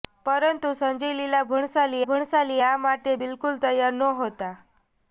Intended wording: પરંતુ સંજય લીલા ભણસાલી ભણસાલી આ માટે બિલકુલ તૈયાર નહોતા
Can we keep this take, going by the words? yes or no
yes